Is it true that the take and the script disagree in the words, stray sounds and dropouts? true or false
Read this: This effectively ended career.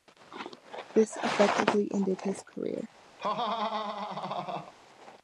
true